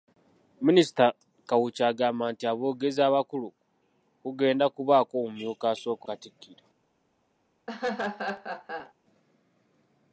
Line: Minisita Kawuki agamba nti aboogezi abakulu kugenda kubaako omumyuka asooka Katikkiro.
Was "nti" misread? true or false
false